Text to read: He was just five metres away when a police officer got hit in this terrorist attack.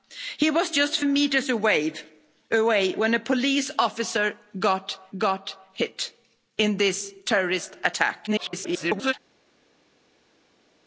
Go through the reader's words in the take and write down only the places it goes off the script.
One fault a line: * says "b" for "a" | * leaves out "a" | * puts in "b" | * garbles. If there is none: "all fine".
* leaves out "five"
* puts in "got"
* garbles